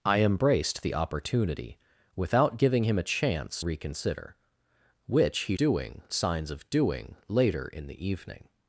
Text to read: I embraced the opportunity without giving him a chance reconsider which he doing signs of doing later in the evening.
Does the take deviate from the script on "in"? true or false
false